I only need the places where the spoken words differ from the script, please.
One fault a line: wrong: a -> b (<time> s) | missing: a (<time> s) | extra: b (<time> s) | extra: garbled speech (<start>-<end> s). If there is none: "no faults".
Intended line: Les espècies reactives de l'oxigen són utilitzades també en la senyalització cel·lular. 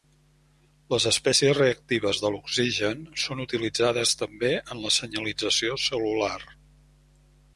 no faults